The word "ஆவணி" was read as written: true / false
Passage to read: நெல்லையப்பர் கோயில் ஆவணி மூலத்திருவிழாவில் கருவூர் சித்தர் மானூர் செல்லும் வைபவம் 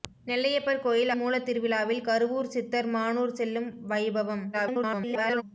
false